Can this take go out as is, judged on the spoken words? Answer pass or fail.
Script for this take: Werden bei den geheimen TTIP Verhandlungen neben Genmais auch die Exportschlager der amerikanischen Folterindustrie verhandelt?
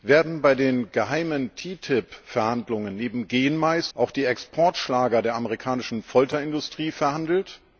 pass